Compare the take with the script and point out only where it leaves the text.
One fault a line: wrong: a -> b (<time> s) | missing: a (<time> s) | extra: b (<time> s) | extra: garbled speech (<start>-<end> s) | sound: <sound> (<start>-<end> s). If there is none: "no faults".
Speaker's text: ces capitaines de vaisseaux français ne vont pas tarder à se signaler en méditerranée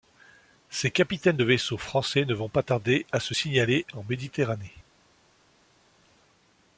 no faults